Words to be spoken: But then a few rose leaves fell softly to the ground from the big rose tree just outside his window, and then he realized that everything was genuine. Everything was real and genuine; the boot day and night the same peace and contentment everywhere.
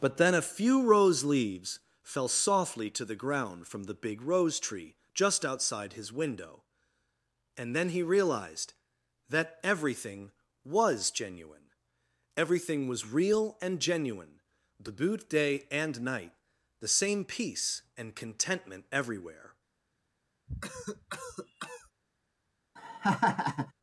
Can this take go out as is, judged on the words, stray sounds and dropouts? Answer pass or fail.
fail